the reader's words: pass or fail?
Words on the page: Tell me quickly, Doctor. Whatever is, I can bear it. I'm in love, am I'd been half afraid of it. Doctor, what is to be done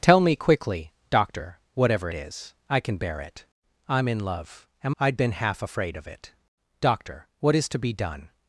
pass